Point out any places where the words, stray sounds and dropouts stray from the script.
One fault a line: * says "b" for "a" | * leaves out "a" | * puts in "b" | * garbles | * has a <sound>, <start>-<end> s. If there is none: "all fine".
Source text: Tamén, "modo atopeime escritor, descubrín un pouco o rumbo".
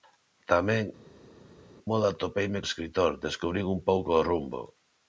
all fine